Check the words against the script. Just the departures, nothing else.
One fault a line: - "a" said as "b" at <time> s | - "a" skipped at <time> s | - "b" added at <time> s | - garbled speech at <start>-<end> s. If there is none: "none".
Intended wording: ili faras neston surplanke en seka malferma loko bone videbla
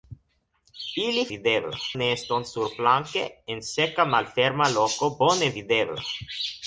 - "faras" said as "videbla" at 1.4 s